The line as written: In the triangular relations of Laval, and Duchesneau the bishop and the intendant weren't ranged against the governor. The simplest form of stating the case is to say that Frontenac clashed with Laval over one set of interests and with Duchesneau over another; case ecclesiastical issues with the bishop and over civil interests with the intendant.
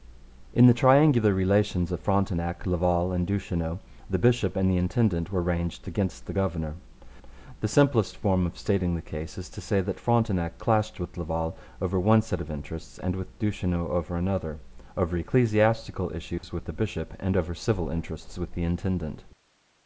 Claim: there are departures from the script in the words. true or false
true